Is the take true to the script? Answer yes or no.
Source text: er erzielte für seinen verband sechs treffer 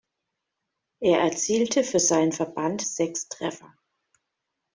yes